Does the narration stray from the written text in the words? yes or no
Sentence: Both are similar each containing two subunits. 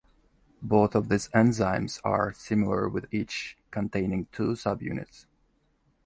yes